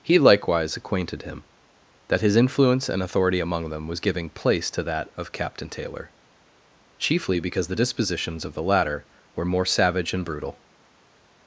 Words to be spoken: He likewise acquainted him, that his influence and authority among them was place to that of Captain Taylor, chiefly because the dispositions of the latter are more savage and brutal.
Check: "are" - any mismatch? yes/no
yes